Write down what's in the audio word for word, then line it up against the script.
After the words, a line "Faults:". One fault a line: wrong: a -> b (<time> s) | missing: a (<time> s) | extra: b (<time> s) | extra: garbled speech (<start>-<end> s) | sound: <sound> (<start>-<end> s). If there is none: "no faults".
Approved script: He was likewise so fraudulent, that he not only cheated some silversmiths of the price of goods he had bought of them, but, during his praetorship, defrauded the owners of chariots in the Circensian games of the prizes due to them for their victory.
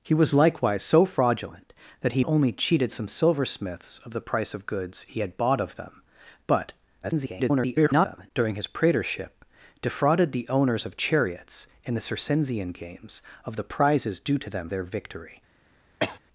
He was likewise so fraudulent, that he only cheated some silversmiths of the price of goods he had bought of them, but, [garbled] during his praetorship, defrauded the owners of chariots in the Circensian games of the prizes due to them their victory.
Faults:
missing: not (2.2 s)
extra: garbled speech (7.0-8.3 s)
missing: for (14.7 s)
sound: cough (16.0-16.2 s)